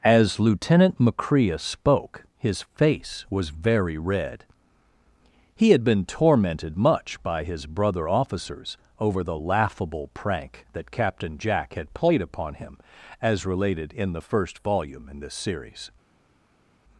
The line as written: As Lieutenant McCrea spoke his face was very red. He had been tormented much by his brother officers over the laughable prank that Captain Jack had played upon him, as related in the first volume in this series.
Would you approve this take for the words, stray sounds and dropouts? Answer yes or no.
yes